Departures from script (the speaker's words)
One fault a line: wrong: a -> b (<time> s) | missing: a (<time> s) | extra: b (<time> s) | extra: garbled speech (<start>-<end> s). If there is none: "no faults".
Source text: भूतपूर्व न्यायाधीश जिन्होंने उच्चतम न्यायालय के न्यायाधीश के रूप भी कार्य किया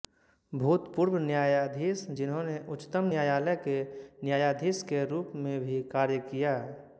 extra: में (5.5 s)